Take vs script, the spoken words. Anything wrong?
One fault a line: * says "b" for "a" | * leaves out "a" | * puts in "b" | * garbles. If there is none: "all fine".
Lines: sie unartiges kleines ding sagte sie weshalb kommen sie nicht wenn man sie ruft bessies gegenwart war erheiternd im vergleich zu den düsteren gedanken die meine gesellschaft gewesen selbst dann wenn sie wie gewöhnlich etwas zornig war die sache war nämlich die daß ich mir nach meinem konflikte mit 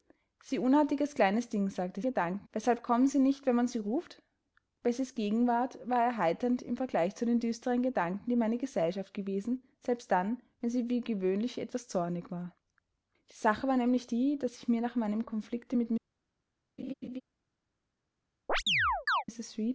* says "gedanken" for "sie"